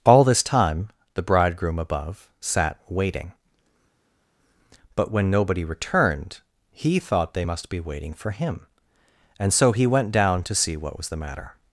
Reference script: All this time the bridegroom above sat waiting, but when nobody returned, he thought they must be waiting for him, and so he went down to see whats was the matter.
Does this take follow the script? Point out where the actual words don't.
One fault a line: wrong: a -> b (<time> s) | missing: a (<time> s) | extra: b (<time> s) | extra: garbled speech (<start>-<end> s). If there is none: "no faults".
wrong: whats -> what (10.7 s)